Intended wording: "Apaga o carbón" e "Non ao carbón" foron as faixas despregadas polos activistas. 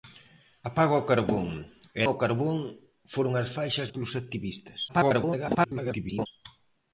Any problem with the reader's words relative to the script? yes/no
yes